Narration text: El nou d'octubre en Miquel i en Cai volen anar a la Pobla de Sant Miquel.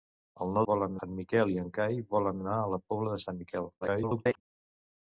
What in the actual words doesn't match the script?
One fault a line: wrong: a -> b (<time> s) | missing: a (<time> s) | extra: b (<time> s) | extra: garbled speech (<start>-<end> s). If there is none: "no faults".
wrong: d'octubre -> volen (0.7 s)
extra: garbled speech (3.8-4.4 s)